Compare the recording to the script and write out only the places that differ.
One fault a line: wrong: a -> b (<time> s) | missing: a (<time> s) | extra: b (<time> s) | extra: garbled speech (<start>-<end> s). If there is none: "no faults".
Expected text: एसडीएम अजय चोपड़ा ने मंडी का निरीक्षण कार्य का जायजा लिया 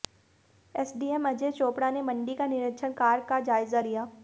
no faults